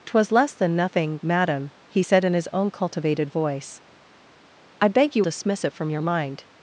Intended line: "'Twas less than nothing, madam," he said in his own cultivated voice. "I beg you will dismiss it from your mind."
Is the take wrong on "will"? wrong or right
wrong